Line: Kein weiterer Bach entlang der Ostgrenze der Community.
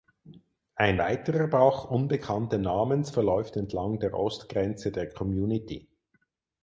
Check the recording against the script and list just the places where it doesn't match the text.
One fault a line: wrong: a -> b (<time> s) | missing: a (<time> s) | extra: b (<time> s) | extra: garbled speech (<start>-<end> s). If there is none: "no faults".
wrong: Kein -> Ein (0.7 s)
extra: unbekannten Namens verläuft (1.9 s)